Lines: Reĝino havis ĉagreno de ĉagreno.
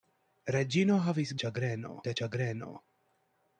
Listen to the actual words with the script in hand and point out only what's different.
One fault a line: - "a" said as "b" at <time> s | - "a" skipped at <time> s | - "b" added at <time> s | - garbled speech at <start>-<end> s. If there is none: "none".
none